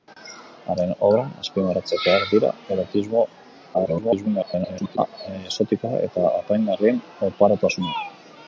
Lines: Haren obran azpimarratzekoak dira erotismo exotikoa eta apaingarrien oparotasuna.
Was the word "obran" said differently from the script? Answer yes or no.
no